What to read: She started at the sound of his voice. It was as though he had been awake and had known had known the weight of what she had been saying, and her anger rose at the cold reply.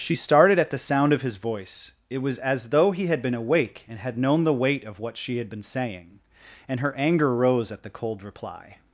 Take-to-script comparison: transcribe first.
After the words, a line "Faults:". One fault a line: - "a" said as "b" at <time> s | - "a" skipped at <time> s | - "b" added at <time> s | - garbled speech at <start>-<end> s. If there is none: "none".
She started at the sound of his voice. It was as though he had been awake and had known the weight of what she had been saying, and her anger rose at the cold reply.
Faults:
- "had known" skipped at 4.4 s